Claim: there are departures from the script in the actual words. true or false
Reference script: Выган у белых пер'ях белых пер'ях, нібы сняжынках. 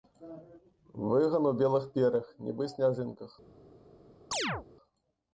true